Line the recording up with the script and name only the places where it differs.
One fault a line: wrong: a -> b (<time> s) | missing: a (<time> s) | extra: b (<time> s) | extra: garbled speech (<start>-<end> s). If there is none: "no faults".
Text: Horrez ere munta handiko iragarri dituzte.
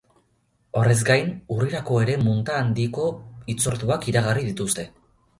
extra: gain urrirako (1.1 s)
extra: hitzorduak (3.5 s)